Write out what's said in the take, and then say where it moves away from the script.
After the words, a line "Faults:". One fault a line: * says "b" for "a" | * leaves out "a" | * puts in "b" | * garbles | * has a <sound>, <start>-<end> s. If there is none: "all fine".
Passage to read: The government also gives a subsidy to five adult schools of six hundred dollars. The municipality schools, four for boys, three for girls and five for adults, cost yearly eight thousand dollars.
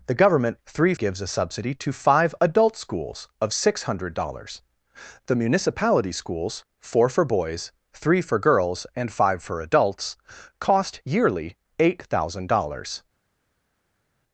The government three gives a subsidy to five adult schools of six hundred dollars. The municipality schools, four for boys, three for girls and five for adults, cost yearly eight thousand dollars.
Faults:
* says "three" for "also"